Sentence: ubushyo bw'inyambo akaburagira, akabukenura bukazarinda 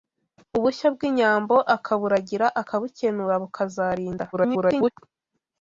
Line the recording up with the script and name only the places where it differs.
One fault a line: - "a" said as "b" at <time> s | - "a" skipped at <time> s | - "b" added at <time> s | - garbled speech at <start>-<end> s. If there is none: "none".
- garbled speech at 4.3-4.9 s